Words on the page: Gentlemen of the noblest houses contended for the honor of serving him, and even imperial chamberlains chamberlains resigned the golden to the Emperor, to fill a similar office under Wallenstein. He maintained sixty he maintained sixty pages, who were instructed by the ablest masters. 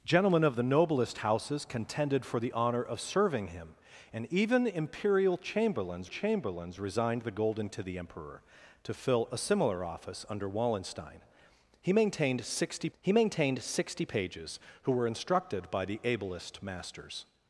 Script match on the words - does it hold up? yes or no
yes